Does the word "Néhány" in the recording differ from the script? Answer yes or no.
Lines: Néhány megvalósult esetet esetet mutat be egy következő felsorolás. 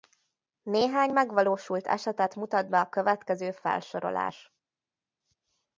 no